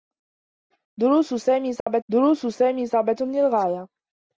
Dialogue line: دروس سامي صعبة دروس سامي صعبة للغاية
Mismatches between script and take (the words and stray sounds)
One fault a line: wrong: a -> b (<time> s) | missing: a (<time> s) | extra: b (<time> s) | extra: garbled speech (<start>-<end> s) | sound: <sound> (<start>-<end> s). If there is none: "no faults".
sound: dropout (1.8-1.9 s)